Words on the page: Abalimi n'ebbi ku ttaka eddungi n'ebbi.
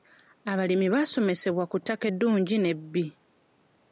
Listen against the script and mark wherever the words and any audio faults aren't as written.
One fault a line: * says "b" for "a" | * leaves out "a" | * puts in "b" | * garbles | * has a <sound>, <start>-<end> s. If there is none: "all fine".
* says "baasomesebwa" for "n'ebbi"
* has a dropout, 1.8-1.9 s